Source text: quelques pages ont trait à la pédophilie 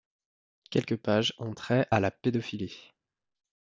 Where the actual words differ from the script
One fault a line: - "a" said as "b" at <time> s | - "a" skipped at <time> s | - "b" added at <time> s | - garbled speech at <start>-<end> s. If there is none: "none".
none